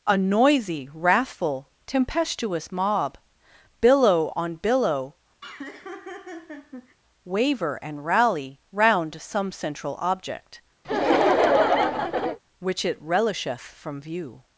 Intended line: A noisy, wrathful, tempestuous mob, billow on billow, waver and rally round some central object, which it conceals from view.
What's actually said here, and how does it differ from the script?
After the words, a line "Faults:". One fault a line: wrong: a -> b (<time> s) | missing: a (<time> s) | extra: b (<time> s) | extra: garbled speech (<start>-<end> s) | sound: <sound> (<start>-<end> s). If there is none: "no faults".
A noisy, wrathful, tempestuous mob, billow on billow, waver and rally round some central object, which it relisheth from view.
Faults:
sound: laugh (5.4-7.0 s)
sound: laugh (10.8-12.4 s)
wrong: conceals -> relisheth (13.0 s)